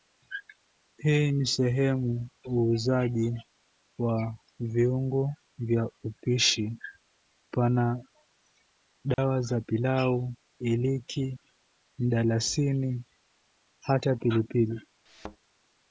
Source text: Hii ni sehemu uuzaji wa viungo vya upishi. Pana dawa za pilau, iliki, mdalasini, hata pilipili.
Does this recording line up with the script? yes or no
yes